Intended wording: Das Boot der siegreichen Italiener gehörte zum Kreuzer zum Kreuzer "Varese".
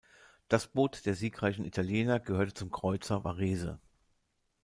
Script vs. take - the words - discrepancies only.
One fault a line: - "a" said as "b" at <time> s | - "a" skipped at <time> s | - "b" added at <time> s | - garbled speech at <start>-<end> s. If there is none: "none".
- "zum Kreuzer" skipped at 3.2 s